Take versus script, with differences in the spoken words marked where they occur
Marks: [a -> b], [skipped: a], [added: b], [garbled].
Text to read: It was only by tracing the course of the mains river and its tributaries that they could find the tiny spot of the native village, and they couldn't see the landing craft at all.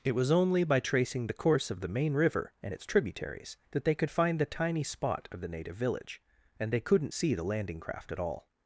It was only by tracing the course of the [mains -> main] river and its tributaries that they could find the tiny spot of the native village, and they couldn't see the landing craft at all.